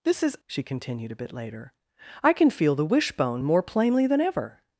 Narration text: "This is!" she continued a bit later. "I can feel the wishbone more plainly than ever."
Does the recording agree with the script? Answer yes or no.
yes